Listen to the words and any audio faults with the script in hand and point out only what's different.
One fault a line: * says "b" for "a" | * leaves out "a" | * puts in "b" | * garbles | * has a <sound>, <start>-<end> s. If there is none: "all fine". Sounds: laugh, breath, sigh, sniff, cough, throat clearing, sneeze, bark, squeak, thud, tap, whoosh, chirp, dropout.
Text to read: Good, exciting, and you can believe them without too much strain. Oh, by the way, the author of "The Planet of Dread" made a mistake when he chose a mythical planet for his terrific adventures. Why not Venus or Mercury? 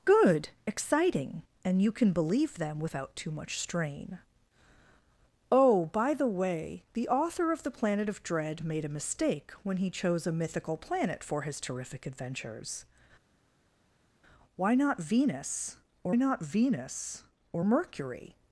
* puts in "not Venus or"